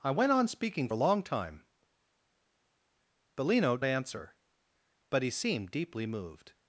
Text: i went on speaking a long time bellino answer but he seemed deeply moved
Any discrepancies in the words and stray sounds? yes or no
no